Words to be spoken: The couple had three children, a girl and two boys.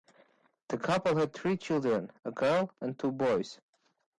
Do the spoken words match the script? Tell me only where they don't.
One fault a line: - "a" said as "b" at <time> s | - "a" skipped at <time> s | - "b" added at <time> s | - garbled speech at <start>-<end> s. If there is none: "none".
none